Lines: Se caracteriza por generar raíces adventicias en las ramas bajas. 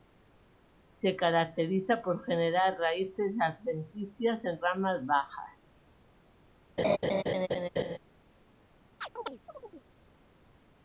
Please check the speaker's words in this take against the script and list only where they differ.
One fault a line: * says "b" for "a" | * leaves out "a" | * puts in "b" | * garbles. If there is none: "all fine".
* leaves out "las"